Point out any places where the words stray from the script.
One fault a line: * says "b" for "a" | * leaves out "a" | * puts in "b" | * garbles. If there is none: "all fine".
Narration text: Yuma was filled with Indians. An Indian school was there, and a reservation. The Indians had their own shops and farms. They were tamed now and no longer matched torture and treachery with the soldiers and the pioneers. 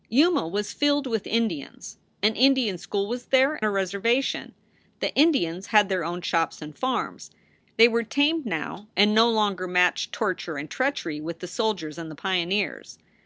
* leaves out "and"